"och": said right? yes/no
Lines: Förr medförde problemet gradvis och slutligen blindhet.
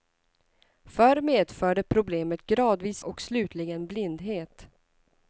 yes